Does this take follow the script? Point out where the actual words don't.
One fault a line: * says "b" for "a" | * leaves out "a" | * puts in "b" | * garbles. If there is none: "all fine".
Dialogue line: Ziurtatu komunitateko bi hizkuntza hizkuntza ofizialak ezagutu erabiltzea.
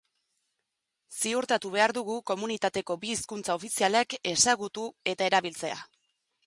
* puts in "behar dugu"
* leaves out "hizkuntza"
* puts in "eta"